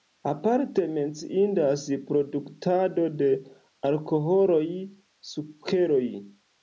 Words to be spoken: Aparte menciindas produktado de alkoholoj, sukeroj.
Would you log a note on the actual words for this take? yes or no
no